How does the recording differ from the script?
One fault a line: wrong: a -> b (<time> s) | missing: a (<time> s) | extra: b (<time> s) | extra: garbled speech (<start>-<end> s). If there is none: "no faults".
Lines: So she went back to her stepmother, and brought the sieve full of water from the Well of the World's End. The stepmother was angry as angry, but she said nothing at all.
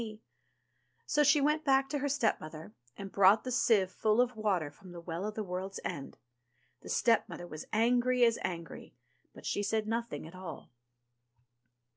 no faults